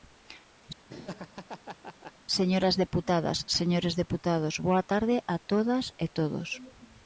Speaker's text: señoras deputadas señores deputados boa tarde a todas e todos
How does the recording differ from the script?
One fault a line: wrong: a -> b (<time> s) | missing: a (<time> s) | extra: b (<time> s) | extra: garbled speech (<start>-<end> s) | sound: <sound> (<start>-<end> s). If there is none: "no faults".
sound: laugh (0.9-2.1 s)